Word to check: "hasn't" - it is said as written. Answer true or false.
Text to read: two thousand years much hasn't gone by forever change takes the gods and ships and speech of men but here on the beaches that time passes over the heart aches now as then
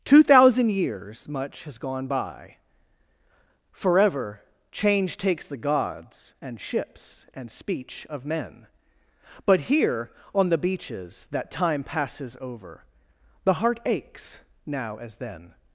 false